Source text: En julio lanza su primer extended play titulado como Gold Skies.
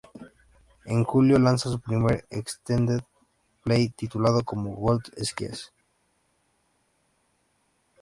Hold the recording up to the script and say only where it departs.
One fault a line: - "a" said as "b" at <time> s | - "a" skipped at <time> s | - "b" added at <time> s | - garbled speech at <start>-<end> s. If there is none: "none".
none